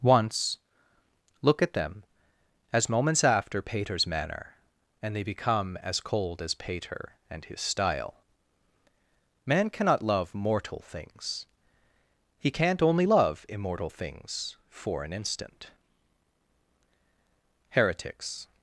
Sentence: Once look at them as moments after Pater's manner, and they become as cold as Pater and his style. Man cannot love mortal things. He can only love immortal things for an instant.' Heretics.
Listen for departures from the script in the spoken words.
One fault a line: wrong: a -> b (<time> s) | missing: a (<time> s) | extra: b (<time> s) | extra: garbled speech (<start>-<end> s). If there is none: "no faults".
wrong: can -> can't (12.5 s)